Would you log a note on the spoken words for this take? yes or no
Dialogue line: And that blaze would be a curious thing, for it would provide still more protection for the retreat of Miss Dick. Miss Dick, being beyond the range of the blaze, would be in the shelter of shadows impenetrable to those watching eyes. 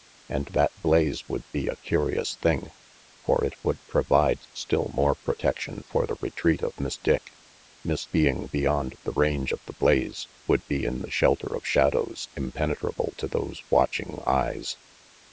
yes